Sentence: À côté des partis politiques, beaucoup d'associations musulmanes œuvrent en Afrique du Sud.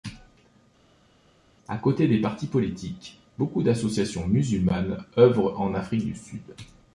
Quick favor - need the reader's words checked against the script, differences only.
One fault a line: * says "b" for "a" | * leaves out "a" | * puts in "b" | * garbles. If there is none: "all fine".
all fine